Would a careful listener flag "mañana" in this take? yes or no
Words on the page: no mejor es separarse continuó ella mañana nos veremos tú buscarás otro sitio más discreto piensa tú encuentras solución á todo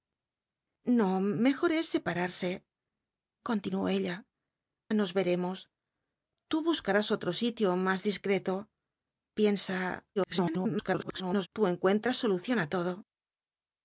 yes